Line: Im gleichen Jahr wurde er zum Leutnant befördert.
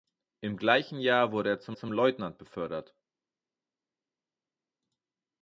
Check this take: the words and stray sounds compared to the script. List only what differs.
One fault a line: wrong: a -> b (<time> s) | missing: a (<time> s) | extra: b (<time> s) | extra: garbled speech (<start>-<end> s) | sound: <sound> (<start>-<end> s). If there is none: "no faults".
extra: zum (1.7 s)